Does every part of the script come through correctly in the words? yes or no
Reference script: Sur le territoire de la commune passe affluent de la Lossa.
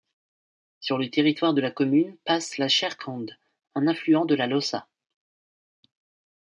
no